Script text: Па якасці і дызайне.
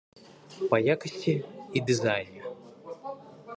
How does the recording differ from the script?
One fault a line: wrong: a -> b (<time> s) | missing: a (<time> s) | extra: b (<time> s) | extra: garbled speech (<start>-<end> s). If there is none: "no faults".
no faults